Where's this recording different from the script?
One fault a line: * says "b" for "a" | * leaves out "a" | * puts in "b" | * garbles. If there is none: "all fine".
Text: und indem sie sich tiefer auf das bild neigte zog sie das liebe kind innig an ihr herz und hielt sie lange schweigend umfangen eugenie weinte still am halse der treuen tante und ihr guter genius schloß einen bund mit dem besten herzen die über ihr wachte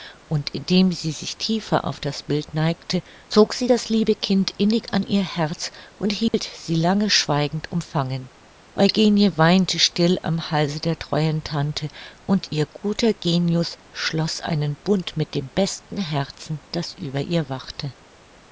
* says "das" for "die"